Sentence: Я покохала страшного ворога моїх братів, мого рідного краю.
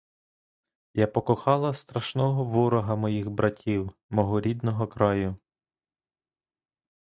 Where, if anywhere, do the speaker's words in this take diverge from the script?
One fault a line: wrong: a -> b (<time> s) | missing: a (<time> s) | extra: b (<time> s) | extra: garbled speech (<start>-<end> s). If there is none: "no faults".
no faults